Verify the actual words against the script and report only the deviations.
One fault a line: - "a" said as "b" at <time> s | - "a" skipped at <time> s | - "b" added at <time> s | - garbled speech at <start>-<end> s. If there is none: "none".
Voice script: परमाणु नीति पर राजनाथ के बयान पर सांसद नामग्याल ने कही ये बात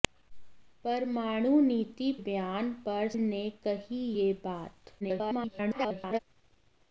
- "पर राजनाथ के" skipped at 2.1 s
- "सांसद नामग्याल" skipped at 3.1 s
- garbled speech at 5.0-6.2 s